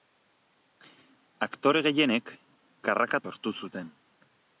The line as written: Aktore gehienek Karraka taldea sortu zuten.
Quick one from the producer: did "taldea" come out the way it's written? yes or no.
no